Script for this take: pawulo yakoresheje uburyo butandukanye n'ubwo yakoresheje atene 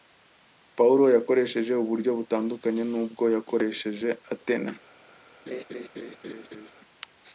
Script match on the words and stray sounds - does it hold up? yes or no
no